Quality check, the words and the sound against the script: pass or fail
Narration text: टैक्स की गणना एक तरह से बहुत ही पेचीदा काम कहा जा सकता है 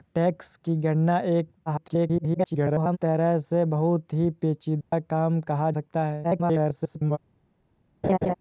fail